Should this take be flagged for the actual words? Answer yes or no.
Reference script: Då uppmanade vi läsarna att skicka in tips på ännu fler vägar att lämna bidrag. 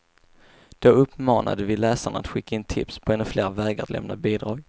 no